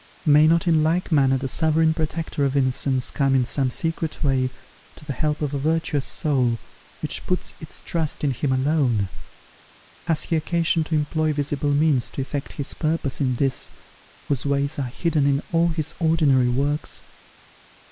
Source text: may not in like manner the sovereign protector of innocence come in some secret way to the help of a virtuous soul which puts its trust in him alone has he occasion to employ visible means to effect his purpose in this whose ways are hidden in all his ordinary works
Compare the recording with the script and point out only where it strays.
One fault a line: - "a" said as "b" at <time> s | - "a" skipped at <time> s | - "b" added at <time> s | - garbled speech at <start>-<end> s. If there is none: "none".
none